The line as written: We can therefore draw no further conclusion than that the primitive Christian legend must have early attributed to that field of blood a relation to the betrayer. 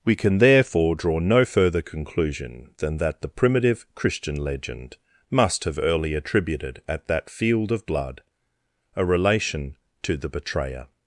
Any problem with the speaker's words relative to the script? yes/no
yes